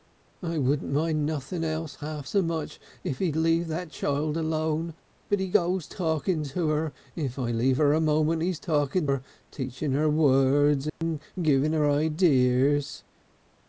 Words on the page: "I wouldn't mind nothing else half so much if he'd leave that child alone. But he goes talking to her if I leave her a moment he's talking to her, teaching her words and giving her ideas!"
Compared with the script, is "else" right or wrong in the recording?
right